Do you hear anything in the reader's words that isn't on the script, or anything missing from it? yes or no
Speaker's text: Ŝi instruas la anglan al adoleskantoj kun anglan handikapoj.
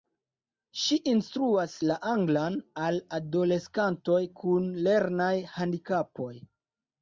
yes